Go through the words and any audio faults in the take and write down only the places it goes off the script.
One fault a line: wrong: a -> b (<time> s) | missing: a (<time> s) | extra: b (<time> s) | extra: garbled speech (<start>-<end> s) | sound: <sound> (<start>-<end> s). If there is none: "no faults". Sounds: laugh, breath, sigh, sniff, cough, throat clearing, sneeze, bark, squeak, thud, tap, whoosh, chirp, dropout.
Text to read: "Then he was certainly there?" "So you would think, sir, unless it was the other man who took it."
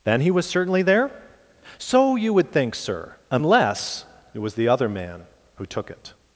no faults